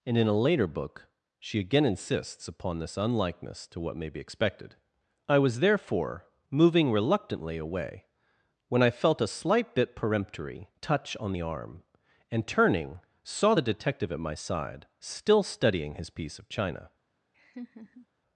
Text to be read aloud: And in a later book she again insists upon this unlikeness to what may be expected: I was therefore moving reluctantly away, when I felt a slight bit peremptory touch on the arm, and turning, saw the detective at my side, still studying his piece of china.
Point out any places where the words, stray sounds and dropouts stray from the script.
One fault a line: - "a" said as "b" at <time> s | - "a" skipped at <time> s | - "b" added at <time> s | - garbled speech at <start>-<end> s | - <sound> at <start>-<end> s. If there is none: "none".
- laugh at 17.3-18.1 s